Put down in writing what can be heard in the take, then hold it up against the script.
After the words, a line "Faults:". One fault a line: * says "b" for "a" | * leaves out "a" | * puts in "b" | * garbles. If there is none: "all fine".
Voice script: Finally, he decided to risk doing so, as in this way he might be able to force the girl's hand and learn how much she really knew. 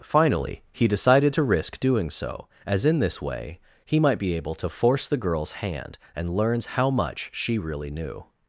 Finally, he decided to risk doing so, as in this way he might be able to force the girl's hand and learns how much she really knew.
Faults:
* says "learns" for "learn"